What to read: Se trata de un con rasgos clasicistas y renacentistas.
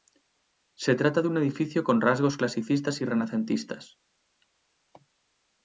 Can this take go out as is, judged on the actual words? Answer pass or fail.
fail